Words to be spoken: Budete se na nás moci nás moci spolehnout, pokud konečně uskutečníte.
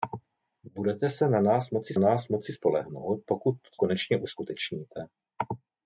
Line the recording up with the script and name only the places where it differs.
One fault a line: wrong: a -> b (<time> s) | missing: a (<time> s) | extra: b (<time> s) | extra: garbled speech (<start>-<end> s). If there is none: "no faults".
no faults